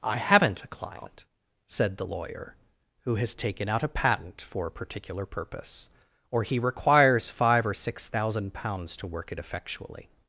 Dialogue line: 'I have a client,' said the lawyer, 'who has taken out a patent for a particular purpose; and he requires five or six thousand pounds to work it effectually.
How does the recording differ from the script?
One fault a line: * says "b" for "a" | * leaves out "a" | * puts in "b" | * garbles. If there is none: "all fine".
* says "haven't" for "have"
* says "or" for "and"